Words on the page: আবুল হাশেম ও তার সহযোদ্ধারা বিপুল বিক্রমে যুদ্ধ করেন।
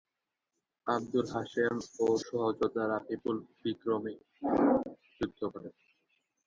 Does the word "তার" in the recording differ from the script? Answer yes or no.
yes